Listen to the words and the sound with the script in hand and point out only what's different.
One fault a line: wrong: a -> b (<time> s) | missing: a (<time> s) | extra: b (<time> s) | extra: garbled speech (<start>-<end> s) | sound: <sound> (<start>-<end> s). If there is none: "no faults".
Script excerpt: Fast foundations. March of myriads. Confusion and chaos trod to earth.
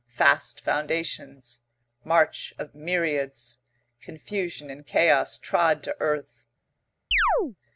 sound: chirp (7.1-7.6 s)